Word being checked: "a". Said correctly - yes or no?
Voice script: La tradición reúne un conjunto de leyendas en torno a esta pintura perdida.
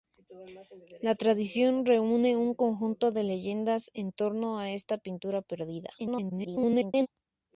yes